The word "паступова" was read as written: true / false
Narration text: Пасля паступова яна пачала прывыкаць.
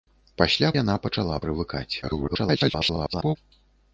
false